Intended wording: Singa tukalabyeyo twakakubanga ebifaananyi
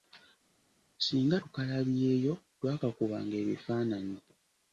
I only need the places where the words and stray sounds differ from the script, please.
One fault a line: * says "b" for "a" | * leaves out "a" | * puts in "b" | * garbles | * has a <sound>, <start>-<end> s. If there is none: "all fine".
all fine